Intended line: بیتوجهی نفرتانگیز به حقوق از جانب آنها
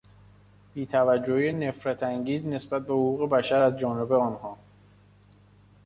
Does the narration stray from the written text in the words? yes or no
yes